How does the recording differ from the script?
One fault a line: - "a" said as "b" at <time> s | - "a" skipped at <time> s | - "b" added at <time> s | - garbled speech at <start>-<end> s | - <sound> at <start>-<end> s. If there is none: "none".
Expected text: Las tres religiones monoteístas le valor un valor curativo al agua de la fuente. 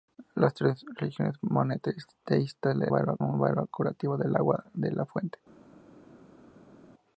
none